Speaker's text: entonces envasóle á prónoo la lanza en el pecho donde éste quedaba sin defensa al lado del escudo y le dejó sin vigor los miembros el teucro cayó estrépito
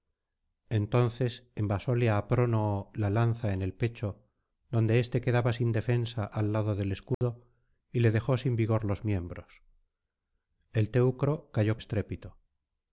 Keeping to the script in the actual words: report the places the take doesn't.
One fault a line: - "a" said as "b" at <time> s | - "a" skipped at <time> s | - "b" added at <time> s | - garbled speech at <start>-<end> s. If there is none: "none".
none